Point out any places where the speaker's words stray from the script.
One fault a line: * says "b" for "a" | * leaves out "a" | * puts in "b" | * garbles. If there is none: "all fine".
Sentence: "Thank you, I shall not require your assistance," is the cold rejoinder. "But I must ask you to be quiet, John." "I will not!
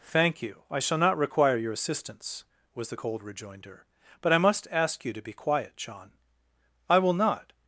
* says "was" for "is"